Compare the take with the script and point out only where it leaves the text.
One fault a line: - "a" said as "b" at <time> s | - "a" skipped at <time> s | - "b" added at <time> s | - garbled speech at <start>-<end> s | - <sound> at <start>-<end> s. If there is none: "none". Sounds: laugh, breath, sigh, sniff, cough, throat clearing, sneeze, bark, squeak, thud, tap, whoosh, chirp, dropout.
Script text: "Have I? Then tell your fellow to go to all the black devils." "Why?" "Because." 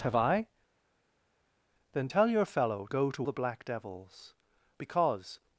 - "to" skipped at 2.9 s
- "all" skipped at 3.3 s
- "Why" skipped at 4.3 s